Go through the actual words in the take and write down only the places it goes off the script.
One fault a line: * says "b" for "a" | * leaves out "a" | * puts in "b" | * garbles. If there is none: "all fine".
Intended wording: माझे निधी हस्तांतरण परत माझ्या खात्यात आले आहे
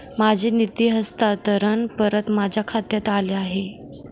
all fine